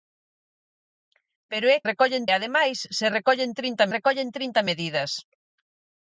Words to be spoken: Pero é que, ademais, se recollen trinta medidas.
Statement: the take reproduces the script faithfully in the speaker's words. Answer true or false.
false